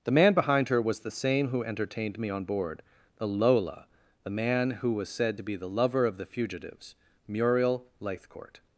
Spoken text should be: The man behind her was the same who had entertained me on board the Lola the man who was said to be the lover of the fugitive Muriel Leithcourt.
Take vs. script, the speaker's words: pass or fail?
fail